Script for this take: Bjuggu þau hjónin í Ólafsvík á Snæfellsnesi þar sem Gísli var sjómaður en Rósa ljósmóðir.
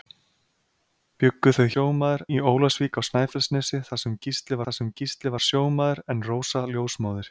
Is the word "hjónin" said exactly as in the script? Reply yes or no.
no